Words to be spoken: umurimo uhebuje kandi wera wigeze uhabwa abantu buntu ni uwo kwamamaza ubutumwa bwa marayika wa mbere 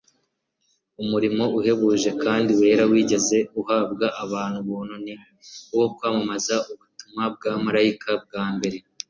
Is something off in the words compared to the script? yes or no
no